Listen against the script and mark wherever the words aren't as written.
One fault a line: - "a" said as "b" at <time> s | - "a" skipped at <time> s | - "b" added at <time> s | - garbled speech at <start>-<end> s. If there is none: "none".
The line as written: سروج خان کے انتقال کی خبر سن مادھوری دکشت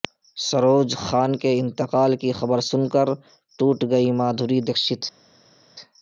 - "کر ٹوٹ گئیں" added at 2.9 s